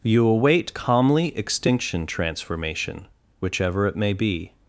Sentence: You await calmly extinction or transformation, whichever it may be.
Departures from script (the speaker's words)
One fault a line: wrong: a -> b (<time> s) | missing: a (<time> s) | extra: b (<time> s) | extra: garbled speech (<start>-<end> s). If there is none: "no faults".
missing: or (2.1 s)